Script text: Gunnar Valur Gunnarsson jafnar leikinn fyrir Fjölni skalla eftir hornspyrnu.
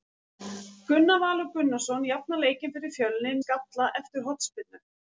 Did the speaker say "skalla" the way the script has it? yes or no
yes